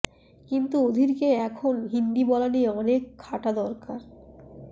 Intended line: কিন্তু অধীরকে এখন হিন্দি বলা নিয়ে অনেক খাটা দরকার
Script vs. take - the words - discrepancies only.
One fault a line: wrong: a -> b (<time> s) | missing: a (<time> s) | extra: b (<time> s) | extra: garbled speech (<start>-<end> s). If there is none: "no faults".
no faults